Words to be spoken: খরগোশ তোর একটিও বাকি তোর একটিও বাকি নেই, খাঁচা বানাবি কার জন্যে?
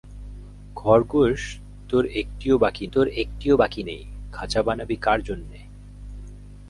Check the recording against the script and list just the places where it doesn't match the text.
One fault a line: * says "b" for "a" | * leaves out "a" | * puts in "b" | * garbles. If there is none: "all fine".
all fine